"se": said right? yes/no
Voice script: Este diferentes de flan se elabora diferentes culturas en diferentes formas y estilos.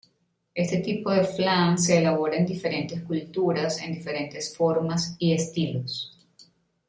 yes